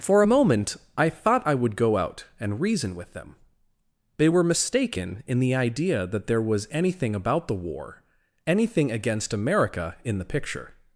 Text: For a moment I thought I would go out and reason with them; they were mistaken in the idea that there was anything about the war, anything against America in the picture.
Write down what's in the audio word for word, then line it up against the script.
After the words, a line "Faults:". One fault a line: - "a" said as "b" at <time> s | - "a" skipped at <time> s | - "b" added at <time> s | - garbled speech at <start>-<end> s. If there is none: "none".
For a moment I thought I would go out and reason with them; they were mistaken in the idea that there was anything about the war, anything against America in the picture.
Faults:
none